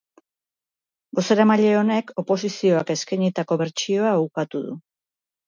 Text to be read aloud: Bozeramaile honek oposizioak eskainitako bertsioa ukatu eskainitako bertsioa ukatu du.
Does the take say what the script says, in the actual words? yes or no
no